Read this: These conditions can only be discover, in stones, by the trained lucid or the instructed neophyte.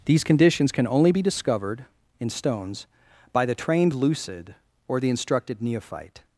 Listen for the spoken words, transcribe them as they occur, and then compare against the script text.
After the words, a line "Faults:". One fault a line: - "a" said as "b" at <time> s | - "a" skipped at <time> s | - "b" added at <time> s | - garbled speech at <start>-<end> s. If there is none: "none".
These conditions can only be discovered, in stones, by the trained lucid or the instructed neophyte.
Faults:
- "discover" said as "discovered" at 1.2 s